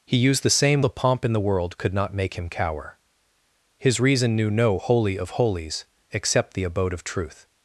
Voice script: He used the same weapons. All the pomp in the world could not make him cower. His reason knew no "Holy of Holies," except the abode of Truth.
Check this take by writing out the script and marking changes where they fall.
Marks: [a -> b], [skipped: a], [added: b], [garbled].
He used the same [skipped: weapons. All] the pomp in the world could not make him cower. His reason knew no "Holy of Holies," except the abode of Truth.